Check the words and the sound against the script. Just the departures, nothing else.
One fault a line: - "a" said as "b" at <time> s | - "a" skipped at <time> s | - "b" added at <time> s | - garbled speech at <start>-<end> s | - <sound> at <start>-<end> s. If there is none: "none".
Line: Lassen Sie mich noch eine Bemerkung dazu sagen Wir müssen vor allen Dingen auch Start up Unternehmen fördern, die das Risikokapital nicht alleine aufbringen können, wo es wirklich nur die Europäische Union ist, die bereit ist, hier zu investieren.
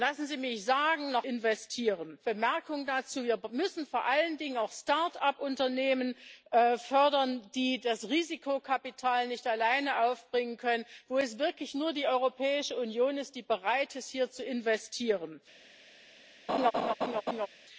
- "eine" said as "investieren" at 1.2 s
- laugh at 16.5-17.5 s